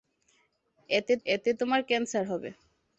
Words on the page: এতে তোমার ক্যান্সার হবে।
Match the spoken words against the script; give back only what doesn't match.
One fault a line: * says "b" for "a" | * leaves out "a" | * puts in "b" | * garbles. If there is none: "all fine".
* puts in "এতে"